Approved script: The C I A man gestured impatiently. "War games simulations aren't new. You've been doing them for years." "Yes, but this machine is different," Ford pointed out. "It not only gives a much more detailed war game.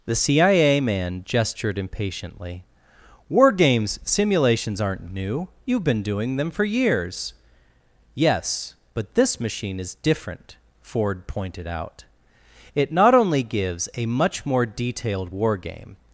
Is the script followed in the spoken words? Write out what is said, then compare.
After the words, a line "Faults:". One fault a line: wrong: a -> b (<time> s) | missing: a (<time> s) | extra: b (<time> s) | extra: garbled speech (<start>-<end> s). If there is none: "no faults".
The C I A man gestured impatiently. "War games simulations aren't new. You've been doing them for years." "Yes, but this machine is different," Ford pointed out. "It not only gives a much more detailed war game.
Faults:
no faults